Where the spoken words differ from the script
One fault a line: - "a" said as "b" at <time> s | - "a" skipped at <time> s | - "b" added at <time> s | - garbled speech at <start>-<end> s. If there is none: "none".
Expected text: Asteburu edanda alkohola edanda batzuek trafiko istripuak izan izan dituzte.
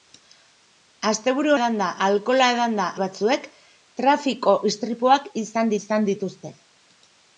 none